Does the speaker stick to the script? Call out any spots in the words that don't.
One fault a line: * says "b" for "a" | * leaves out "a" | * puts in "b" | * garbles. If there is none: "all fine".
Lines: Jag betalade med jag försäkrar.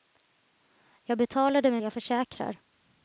all fine